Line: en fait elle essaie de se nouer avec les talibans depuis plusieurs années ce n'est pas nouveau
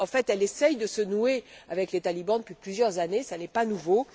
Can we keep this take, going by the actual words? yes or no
yes